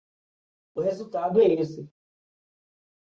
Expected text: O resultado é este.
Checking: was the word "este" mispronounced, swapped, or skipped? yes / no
yes